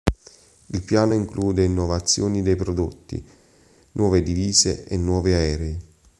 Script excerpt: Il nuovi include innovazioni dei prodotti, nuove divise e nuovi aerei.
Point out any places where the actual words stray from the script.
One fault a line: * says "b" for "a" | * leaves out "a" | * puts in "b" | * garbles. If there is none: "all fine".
* says "piano" for "nuovi"